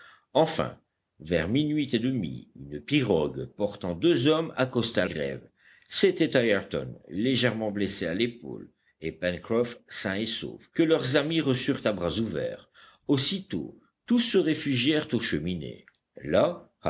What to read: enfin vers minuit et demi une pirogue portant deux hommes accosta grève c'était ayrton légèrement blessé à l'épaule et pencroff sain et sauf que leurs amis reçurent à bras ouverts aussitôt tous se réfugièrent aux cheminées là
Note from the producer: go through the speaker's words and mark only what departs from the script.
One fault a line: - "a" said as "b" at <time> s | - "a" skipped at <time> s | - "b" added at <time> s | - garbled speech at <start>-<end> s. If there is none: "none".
none